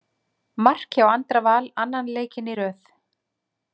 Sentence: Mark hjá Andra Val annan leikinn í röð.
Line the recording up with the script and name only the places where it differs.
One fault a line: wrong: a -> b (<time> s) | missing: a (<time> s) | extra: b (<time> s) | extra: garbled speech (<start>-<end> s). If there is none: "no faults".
no faults